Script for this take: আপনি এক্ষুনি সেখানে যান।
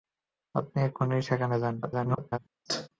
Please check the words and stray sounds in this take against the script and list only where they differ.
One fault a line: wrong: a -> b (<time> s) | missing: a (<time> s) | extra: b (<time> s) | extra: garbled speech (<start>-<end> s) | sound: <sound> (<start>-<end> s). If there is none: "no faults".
extra: garbled speech (1.8-2.4 s)
sound: sneeze (2.7-2.9 s)